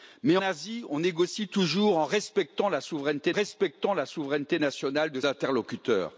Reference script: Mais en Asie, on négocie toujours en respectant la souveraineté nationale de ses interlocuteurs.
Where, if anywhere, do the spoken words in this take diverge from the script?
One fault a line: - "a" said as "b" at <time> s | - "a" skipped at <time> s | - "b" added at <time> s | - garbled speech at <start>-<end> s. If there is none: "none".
- "en" skipped at 0.4 s
- "respectant la souveraineté" added at 3.3 s
- "ses" skipped at 5.2 s